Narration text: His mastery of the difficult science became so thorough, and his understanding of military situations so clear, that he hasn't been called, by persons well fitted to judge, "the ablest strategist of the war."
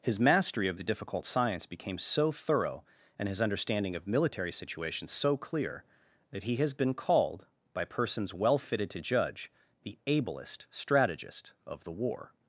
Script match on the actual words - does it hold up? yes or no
no